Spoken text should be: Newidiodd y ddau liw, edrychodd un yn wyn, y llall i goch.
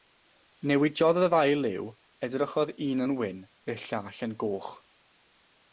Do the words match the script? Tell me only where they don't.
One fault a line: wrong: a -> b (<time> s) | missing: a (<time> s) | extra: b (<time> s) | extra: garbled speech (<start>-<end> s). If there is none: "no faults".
wrong: i -> yn (4.3 s)